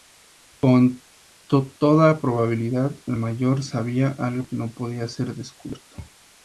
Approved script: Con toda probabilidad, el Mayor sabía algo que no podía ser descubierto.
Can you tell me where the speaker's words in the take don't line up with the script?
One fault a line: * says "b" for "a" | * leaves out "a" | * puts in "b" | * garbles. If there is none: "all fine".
all fine